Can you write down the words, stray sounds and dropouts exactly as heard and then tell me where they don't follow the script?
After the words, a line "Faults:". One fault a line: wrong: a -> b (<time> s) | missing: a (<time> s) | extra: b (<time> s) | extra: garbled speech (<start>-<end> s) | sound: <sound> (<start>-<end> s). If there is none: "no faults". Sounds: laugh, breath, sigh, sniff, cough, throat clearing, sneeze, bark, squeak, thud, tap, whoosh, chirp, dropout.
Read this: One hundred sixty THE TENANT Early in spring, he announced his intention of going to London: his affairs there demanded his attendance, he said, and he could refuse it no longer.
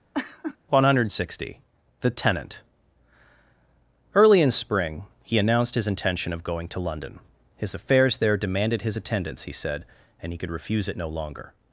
One hundred sixty THE TENANT Early in spring, he announced his intention of going to London: his affairs there demanded his attendance, he said, and he could refuse it no longer.
Faults:
sound: laugh (0.1-0.6 s)